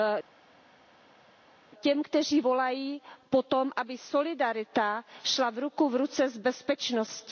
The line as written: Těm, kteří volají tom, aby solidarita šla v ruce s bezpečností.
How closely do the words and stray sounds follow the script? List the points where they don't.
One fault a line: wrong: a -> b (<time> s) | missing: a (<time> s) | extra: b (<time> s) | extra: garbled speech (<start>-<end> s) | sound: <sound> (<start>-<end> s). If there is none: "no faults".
extra: po (3.3 s)
extra: ruku (5.5 s)